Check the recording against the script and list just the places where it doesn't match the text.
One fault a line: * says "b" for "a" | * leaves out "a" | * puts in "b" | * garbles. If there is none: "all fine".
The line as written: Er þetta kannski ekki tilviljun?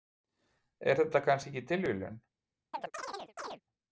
all fine